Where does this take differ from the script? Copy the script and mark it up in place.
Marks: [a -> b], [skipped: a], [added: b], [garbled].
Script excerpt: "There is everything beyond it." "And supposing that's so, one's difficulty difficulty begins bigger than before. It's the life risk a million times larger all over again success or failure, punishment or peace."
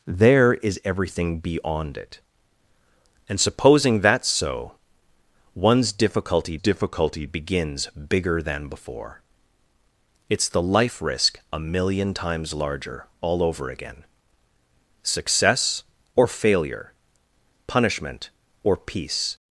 "There is everything beyond it." "And supposing that's so, one's difficulty difficulty begins bigger than before. It's the life risk a million times larger all over again success or failure, punishment or peace."